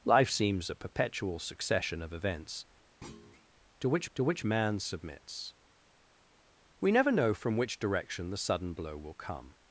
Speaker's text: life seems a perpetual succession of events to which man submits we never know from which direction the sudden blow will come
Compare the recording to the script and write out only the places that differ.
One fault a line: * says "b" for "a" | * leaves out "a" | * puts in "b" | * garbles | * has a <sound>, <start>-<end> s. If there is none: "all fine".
* has a thud, 3.0-3.5 s
* puts in "to which"